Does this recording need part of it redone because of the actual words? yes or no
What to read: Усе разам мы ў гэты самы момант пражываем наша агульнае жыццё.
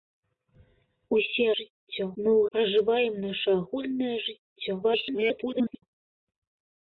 yes